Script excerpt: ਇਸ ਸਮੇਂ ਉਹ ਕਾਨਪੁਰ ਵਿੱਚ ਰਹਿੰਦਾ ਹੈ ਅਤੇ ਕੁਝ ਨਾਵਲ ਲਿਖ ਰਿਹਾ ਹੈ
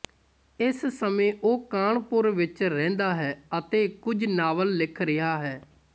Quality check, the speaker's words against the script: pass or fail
pass